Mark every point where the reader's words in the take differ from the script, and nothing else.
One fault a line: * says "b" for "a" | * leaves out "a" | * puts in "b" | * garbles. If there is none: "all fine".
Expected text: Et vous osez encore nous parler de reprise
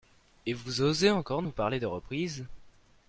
all fine